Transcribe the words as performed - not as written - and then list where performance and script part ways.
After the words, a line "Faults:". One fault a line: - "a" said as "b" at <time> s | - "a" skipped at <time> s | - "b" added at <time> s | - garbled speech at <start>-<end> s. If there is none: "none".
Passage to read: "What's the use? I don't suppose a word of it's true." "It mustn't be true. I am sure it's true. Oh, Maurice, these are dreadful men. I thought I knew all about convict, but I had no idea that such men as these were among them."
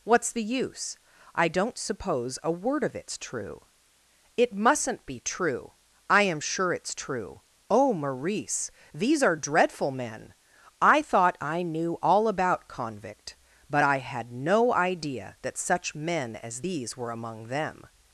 "What's the use? I don't suppose a word of it's true." "It mustn't be true. I am sure it's true. Oh, Maurice, these are dreadful men. I thought I knew all about convict, but I had no idea that such men as these were among them."
Faults:
none